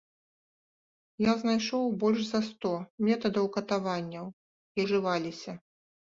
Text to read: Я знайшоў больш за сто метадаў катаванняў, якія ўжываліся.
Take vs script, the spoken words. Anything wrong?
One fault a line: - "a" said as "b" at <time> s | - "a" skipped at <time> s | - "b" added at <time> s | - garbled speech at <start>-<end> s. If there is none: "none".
- "якія" skipped at 4.2 s